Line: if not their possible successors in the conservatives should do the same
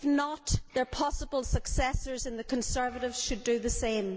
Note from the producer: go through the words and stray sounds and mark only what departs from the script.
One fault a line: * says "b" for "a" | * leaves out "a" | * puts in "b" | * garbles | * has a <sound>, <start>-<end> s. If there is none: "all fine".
all fine